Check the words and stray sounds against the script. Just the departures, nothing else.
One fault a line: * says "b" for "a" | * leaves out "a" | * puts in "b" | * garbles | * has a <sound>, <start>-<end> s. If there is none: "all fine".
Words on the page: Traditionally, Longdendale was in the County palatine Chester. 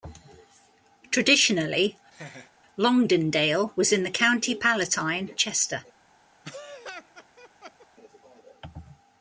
* has a laugh, 2.1-2.5 s
* has a laugh, 6.4-7.9 s